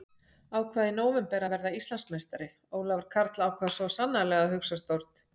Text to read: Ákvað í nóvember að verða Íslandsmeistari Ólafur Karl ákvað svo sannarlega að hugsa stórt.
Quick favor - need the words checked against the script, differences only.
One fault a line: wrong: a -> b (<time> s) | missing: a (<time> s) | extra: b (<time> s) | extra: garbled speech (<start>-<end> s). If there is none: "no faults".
no faults